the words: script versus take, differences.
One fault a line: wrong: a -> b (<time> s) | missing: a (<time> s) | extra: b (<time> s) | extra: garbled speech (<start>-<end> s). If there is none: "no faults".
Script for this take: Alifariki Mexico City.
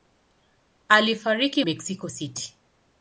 no faults